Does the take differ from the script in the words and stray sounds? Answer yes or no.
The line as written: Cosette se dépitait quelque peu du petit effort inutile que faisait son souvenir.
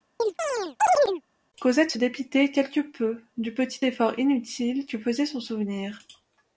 yes